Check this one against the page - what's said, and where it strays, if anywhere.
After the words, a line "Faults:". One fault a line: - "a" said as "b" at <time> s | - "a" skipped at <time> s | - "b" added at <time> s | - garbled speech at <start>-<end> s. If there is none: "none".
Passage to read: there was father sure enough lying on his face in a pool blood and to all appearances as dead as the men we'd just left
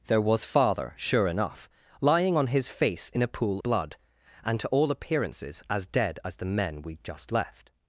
there was father sure enough lying on his face in a pool blood and to all appearances as dead as the men we'd just left
Faults:
none